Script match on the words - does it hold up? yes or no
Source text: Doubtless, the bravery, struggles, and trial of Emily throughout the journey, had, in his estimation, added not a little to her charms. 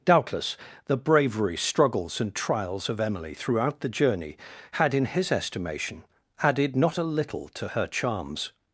no